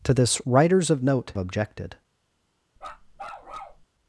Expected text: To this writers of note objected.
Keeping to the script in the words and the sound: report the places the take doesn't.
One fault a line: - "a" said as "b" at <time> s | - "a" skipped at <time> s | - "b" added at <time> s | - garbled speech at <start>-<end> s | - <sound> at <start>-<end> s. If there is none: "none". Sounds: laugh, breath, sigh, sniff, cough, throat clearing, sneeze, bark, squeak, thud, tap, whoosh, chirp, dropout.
- bark at 2.8-3.9 s